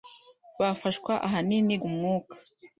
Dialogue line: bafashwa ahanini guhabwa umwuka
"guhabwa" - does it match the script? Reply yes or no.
no